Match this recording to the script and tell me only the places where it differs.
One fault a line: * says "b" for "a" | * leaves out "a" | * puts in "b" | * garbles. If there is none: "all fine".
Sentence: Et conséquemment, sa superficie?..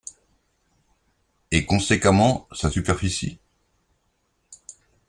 all fine